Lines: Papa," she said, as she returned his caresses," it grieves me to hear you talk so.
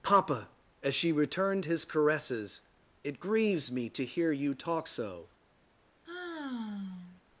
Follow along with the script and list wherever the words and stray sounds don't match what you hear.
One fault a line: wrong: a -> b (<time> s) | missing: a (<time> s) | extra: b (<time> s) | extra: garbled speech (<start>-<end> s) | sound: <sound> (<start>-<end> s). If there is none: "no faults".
missing: she said (0.5 s)
sound: sigh (6.1-7.2 s)